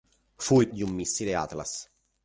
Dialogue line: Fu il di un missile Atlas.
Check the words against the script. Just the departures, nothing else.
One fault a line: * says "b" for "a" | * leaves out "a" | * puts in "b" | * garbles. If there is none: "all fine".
all fine